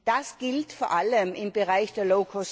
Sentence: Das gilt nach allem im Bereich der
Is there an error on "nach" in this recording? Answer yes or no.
yes